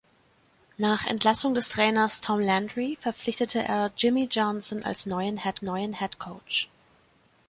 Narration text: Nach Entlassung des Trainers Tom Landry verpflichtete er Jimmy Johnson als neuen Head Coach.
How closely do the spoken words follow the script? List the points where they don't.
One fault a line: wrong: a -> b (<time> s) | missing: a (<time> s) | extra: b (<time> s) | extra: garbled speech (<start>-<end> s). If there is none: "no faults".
extra: neuen Head (5.6 s)